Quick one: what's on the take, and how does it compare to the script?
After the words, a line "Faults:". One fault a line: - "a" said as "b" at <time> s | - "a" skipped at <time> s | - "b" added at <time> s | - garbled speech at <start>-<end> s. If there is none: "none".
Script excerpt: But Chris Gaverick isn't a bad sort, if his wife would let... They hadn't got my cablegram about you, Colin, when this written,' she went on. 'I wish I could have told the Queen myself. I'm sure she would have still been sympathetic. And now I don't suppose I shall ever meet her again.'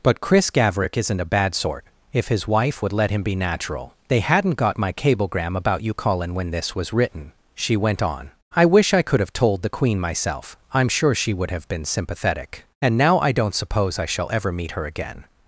But Chris Gaverick isn't a bad sort, if his wife would let him be natural... They hadn't got my cablegram about you, Colin, when this was written,' she went on. 'I wish I could have told the Queen myself. I'm sure she would have been sympathetic. And now I don't suppose I shall ever meet her again.'
Faults:
- "him be natural" added at 3.1 s
- "was" added at 6.7 s
- "still" skipped at 11.7 s